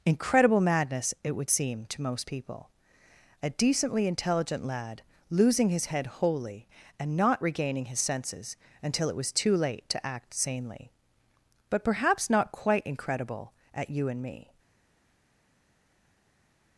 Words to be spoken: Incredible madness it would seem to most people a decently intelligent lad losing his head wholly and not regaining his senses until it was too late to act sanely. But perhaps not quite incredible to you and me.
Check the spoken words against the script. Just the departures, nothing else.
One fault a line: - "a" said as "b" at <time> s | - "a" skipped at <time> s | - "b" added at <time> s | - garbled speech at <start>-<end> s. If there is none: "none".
- "to" said as "at" at 13.7 s